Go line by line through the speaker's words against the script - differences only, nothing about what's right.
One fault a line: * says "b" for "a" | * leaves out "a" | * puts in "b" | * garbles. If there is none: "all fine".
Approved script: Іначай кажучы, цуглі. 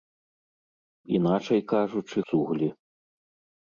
all fine